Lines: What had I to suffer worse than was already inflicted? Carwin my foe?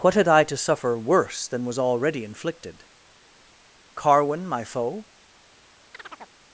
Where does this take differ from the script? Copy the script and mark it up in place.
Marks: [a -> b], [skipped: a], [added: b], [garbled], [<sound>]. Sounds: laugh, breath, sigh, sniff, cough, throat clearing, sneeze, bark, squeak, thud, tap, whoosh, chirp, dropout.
What had I to suffer worse than was already inflicted? Carwin my foe? [chirp]